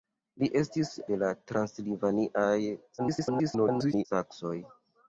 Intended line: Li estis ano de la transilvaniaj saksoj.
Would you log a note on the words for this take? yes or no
yes